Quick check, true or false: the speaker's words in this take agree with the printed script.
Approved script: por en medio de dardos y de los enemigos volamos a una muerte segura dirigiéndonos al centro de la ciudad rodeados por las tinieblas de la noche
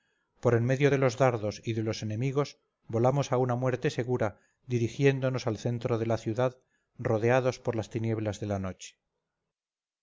false